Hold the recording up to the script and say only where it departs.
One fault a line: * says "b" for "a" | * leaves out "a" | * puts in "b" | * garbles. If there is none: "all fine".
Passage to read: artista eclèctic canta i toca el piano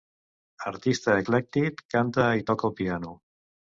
all fine